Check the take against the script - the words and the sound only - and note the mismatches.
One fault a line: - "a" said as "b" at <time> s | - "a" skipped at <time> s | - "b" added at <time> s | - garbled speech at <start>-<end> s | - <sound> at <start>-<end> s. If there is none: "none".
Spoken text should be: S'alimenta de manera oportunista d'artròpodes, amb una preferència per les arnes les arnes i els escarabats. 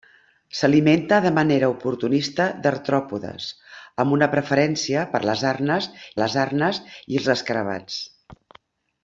none